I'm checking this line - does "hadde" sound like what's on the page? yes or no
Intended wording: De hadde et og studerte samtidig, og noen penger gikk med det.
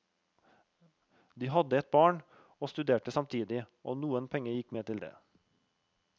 yes